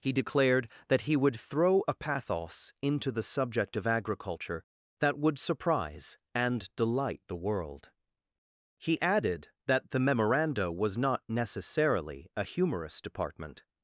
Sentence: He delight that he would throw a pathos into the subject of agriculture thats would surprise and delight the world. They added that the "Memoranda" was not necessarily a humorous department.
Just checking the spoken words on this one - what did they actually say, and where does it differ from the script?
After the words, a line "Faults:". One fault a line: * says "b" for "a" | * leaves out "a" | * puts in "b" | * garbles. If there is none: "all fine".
He declared that he would throw a pathos into the subject of agriculture that would surprise and delight the world. He added that the "Memoranda" was not necessarily a humorous department.
Faults:
* says "declared" for "delight"
* says "that" for "thats"
* says "He" for "They"